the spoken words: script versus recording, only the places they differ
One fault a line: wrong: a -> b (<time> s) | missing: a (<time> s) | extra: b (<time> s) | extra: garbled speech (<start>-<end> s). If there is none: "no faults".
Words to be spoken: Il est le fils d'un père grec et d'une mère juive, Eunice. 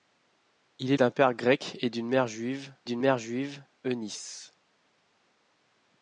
missing: le fils (1.0 s)
extra: d'une mère juive (2.8 s)